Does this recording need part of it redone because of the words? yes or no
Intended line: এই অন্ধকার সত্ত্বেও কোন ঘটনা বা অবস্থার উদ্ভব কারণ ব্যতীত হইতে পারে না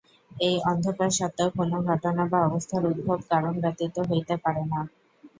no